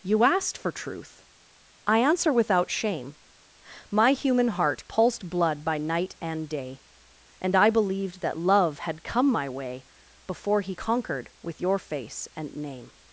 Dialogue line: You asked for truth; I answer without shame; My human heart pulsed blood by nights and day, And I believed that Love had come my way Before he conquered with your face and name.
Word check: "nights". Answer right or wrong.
wrong